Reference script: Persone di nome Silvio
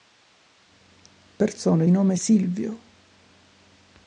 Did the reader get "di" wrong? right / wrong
wrong